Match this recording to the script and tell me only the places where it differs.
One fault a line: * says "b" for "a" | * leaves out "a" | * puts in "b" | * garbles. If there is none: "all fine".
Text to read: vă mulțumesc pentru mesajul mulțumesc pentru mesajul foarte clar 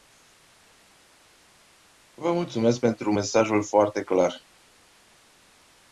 * leaves out "mulțumesc pentru mesajul"